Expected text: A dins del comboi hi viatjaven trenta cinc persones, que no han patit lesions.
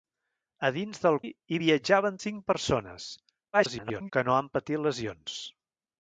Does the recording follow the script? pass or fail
fail